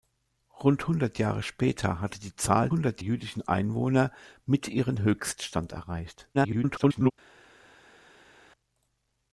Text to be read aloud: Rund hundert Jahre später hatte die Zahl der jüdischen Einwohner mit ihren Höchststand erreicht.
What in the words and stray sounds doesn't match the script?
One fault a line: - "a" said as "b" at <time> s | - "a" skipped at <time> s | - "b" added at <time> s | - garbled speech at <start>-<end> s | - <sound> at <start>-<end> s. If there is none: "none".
- "der" said as "hundert" at 2.7 s
- garbled speech at 6.3-7.1 s